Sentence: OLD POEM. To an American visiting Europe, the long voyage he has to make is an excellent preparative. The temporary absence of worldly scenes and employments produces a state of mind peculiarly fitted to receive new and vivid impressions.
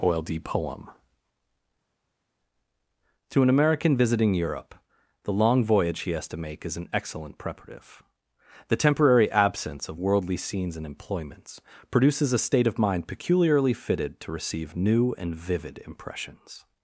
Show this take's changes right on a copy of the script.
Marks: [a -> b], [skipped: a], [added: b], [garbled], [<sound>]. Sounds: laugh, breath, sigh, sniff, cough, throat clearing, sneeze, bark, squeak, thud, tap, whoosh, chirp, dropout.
OLD POEM. To an American visiting Europe, the long voyage he has to make is an excellent preparative. The temporary absence of worldly scenes and employments produces a state of mind peculiarly fitted to receive new and vivid impressions.